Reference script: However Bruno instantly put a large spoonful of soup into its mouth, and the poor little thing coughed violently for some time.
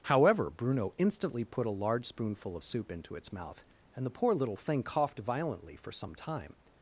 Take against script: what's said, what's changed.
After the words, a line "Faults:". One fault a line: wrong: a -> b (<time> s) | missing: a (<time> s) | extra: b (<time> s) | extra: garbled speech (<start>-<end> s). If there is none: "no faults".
However Bruno instantly put a large spoonful of soup into its mouth, and the poor little thing coughed violently for some time.
Faults:
no faults